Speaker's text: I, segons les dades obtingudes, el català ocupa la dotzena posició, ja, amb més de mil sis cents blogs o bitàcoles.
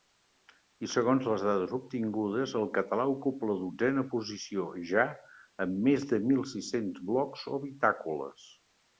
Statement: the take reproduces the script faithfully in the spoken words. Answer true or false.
true